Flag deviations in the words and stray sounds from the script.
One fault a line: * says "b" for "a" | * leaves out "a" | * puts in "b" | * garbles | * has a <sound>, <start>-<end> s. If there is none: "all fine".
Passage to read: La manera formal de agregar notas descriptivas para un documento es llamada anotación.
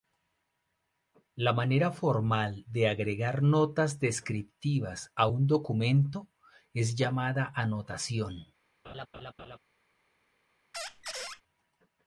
* says "a" for "para"
* has a laugh, 8.8-9.6 s
* has a squeak, 10.7-11.4 s